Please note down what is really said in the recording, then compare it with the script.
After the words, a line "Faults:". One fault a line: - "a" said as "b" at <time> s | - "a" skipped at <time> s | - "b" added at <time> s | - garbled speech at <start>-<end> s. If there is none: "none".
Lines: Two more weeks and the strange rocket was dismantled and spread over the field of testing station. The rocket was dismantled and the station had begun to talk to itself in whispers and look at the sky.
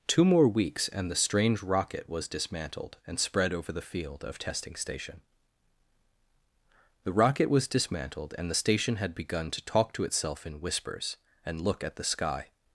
Two more weeks and the strange rocket was dismantled and spread over the field of testing station. The rocket was dismantled and the station had begun to talk to itself in whispers and look at the sky.
Faults:
none